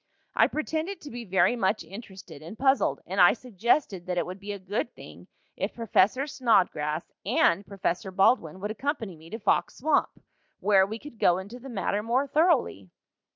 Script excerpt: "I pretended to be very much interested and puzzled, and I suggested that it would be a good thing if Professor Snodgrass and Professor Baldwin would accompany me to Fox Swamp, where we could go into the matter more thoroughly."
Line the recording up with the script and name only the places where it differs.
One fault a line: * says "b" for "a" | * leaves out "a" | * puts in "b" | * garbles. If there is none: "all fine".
all fine